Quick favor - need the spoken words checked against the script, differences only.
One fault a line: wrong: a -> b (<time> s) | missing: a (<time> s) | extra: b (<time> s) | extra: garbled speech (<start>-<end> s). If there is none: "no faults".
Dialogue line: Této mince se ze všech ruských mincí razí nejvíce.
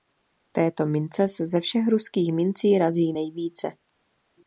no faults